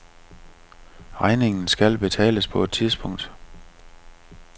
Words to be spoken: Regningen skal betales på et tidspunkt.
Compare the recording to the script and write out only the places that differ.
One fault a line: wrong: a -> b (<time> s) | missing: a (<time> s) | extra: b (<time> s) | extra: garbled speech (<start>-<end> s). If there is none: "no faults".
no faults